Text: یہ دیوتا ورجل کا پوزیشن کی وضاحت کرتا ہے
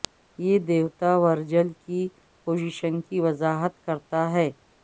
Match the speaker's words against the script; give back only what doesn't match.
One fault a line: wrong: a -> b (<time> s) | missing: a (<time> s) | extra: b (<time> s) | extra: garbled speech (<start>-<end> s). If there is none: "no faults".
wrong: کا -> کی (1.8 s)